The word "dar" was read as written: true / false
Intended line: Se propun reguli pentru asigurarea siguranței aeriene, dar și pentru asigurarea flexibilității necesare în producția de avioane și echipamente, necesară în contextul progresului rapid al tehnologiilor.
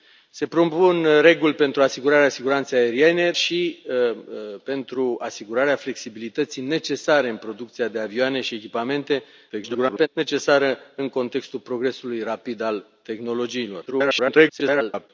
false